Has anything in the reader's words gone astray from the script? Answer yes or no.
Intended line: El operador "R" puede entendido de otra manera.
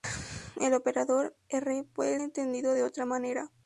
no